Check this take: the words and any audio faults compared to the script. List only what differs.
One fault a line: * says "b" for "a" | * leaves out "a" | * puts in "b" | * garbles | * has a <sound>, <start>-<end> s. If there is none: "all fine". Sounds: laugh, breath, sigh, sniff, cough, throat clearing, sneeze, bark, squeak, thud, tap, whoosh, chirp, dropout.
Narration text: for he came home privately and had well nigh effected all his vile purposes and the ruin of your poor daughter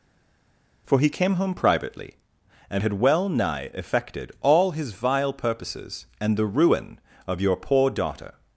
all fine